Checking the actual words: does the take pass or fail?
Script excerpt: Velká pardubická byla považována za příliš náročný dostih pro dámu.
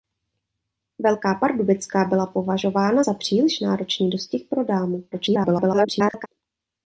fail